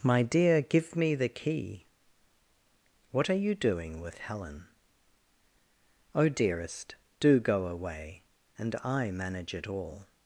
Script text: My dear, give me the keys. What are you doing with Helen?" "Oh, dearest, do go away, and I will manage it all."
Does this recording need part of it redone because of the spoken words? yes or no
yes